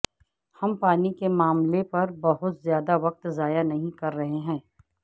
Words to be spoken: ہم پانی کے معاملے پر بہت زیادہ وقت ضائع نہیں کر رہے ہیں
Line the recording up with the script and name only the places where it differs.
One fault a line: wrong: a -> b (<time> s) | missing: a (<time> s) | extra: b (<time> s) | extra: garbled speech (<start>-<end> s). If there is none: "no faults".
no faults